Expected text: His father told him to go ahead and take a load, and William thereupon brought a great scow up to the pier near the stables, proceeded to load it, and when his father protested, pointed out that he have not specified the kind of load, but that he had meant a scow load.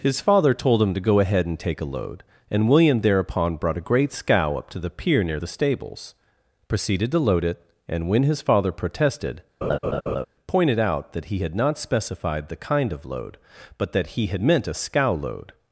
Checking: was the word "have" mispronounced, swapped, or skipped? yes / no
yes